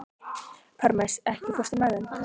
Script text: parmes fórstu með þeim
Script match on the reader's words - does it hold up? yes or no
no